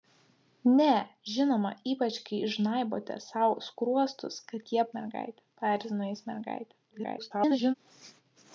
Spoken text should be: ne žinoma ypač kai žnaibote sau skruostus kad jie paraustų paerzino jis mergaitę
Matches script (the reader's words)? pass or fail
fail